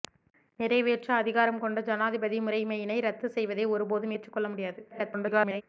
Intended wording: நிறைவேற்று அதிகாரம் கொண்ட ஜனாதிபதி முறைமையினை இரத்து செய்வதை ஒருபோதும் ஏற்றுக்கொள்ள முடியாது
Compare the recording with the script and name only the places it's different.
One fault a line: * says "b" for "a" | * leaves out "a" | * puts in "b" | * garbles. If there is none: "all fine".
* garbles